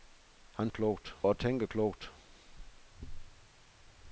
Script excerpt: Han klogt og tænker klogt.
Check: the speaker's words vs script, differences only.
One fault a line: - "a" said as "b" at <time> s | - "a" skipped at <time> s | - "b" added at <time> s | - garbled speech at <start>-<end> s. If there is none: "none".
none